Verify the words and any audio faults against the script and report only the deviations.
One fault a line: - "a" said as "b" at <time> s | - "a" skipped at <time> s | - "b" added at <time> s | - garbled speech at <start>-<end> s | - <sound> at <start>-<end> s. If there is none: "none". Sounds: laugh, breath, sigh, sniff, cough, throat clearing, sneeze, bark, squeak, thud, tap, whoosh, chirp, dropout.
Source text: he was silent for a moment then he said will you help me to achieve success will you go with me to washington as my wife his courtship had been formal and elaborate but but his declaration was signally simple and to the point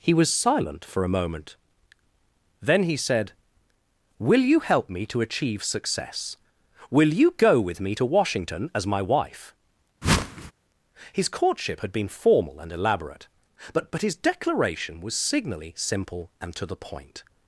- whoosh at 10.0-10.5 s